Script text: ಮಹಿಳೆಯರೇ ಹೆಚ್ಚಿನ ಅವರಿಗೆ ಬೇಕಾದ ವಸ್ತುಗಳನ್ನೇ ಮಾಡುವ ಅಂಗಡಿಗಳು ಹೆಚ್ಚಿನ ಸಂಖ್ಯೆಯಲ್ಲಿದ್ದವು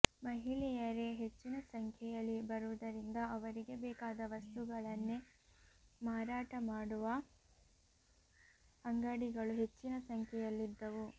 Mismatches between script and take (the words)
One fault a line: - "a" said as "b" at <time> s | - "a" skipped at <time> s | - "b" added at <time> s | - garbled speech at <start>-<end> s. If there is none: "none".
- "ಸಂಖ್ಯೆಯಲ್ಲಿ ಬರುವುದರಿಂದ" added at 1.7 s
- "ಮಾರಾಟ" added at 6.0 s